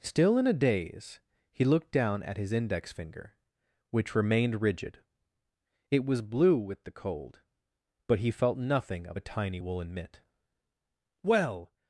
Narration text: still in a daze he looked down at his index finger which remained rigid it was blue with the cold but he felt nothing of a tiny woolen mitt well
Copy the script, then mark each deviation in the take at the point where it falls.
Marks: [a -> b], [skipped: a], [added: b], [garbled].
still in a daze he looked down at his index finger which remained rigid it was blue with the cold but he felt nothing of a tiny woolen mitt well